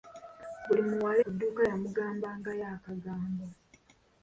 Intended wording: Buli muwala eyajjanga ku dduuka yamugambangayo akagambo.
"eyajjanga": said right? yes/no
no